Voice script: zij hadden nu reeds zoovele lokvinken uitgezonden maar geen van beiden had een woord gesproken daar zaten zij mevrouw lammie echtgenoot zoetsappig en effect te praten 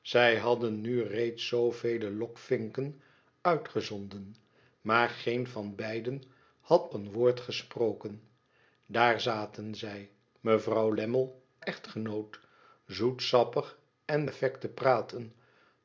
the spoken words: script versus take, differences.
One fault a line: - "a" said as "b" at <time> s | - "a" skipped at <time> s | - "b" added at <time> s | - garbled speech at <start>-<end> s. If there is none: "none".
none